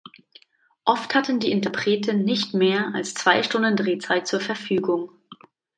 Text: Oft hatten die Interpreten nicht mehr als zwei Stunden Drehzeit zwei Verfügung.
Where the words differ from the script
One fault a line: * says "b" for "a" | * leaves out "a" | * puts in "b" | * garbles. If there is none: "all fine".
* says "zur" for "zwei"